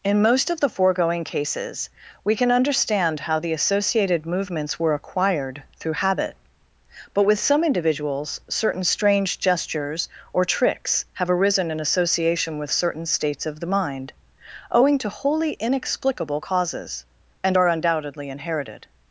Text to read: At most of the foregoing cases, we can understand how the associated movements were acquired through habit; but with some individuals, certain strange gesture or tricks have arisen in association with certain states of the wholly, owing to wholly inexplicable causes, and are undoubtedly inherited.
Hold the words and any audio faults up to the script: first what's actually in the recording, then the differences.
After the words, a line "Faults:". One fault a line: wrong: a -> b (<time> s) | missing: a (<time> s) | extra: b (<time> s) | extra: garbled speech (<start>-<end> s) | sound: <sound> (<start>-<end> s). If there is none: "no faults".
In most of the foregoing cases, we can understand how the associated movements were acquired through habit; but with some individuals, certain strange gestures or tricks have arisen in association with certain states of the mind, owing to wholly inexplicable causes, and are undoubtedly inherited.
Faults:
wrong: At -> In (0.0 s)
wrong: gesture -> gestures (9.4 s)
wrong: wholly -> mind (13.7 s)